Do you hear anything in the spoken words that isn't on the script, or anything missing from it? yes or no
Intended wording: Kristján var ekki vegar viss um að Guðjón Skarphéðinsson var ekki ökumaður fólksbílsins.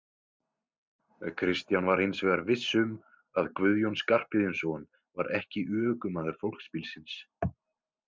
yes